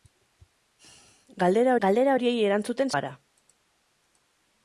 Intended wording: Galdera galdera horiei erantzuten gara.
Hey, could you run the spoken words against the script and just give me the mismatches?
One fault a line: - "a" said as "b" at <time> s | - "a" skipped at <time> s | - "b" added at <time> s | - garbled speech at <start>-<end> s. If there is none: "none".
none